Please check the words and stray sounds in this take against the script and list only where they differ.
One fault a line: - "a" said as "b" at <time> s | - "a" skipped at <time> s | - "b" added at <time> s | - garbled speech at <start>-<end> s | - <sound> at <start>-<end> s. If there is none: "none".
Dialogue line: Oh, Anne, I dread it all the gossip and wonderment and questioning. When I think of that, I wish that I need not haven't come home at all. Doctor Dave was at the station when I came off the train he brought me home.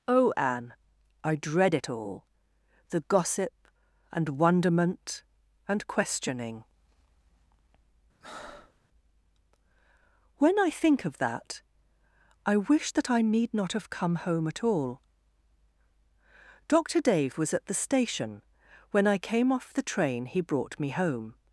- breath at 8.2-8.8 s
- "haven't" said as "have" at 13.7 s